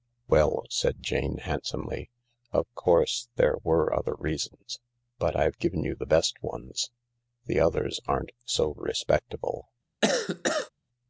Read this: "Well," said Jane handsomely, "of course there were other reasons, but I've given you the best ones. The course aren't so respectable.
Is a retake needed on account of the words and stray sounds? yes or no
yes